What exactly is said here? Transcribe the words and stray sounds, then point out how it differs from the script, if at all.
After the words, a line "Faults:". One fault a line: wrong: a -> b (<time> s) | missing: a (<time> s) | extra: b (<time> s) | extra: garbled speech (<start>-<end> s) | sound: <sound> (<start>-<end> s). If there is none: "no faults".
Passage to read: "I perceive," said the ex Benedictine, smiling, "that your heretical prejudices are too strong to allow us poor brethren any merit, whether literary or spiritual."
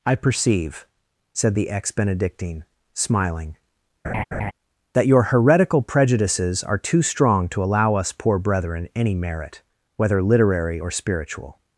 "I perceive," said the ex Benedictine, smiling, "that your heretical prejudices are too strong to allow us poor brethren any merit, whether literary or spiritual."
Faults:
sound: laugh (4.0-4.5 s)